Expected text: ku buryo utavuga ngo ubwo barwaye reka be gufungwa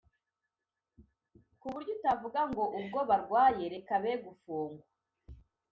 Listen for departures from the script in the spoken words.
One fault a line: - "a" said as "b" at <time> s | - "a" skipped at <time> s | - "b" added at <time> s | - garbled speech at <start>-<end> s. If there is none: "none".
none